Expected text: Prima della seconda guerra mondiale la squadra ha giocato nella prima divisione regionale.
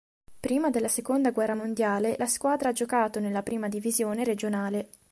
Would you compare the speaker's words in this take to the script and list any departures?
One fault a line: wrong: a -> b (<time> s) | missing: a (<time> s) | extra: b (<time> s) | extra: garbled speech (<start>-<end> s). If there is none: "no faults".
no faults